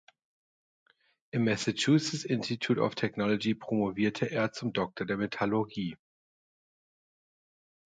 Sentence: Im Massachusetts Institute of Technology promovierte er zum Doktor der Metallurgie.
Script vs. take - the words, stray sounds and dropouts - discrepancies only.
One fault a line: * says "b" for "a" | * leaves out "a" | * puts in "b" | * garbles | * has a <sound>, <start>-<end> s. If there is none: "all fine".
all fine